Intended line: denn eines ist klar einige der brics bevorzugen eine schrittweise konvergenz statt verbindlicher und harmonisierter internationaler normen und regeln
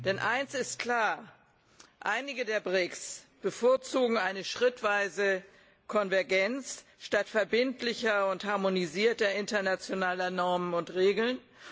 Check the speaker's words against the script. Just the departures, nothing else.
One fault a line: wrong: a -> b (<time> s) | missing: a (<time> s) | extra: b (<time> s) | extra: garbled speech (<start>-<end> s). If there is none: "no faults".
no faults